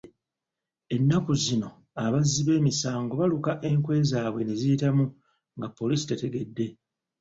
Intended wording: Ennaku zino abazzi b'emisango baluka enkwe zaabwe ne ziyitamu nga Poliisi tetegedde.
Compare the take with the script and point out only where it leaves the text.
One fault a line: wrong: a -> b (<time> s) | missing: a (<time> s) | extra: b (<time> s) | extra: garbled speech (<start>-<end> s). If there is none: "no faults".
no faults